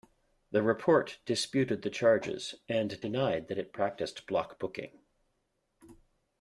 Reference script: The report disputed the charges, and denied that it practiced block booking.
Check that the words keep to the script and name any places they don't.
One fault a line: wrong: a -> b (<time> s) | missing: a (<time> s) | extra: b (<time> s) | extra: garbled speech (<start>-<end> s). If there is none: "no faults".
no faults